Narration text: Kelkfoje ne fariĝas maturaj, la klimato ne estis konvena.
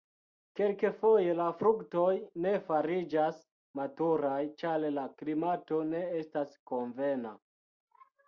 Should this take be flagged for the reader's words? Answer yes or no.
yes